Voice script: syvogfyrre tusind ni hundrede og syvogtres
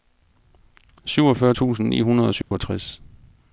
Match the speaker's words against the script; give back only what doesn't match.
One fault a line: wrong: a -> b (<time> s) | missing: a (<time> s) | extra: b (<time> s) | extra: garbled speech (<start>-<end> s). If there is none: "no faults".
no faults